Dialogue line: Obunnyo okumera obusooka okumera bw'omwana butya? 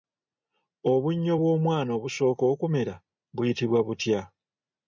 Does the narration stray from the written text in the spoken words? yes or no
yes